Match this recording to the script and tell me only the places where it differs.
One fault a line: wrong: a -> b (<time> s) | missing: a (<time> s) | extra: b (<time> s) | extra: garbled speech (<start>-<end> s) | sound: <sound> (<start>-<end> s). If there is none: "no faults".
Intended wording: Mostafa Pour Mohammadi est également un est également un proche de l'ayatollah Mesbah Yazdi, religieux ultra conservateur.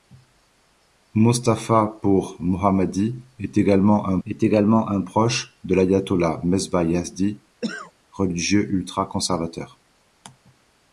sound: cough (7.6-7.9 s)